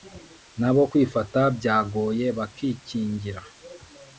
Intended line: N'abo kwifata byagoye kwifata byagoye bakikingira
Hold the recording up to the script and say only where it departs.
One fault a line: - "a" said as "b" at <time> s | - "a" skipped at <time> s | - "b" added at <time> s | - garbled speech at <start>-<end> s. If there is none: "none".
- "kwifata byagoye" skipped at 2.3 s